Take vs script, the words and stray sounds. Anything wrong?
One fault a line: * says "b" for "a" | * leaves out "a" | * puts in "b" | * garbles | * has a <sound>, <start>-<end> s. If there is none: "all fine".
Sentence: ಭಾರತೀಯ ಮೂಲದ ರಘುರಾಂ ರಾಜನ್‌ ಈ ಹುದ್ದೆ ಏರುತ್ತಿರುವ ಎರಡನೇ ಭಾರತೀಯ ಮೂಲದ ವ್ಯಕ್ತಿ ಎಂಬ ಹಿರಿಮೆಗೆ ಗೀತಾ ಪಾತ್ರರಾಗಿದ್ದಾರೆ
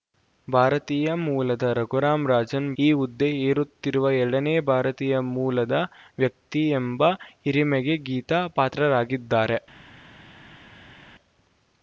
all fine